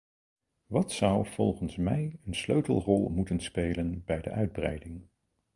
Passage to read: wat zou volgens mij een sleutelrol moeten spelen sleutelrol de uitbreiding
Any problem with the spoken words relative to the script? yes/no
yes